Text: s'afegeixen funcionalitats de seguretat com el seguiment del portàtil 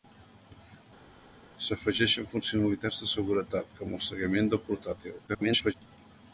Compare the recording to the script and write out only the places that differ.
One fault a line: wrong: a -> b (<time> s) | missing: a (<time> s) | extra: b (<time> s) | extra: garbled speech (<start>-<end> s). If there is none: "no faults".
extra: garbled speech (5.3-5.7 s)